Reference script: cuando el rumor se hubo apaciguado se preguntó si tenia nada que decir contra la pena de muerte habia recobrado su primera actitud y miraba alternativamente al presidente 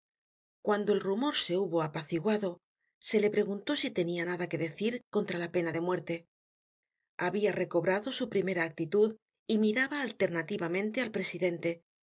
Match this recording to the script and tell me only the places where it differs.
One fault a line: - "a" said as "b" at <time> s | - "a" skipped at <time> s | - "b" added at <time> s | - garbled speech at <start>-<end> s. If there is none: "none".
- "le" added at 3.2 s